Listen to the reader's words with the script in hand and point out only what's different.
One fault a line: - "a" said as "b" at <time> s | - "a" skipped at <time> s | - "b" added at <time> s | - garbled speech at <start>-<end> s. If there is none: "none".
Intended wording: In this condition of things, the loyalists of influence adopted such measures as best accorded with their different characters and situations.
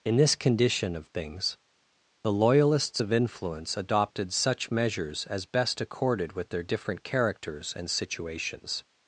none